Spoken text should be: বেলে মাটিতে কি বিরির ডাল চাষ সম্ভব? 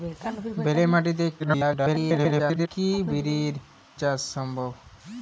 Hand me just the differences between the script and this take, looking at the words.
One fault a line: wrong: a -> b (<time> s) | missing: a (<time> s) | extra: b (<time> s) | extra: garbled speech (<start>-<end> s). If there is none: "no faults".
extra: garbled speech (1.4-2.7 s)
missing: ডাল (3.5 s)